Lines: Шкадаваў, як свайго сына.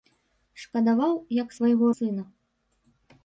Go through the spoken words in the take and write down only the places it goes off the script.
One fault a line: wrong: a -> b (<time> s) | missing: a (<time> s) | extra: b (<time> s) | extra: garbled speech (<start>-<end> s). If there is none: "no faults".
no faults